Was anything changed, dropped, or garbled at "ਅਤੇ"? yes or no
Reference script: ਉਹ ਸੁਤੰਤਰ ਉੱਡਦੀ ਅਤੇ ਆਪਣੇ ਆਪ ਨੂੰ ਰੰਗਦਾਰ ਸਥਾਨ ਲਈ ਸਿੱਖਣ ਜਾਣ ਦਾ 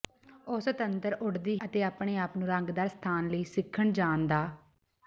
no